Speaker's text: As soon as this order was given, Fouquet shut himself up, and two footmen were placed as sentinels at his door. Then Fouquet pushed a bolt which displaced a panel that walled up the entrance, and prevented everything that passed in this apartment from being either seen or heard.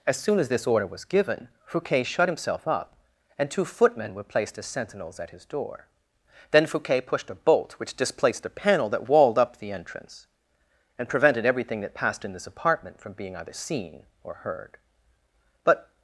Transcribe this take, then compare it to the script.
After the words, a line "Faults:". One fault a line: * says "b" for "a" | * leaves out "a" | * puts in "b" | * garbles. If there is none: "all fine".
As soon as this order was given, Fouquet shut himself up, and two footmen were placed as sentinels at his door. Then Fouquet pushed a bolt which displaced a panel that walled up the entrance, and prevented everything that passed in this apartment from being either seen or heard. But
Faults:
* puts in "But"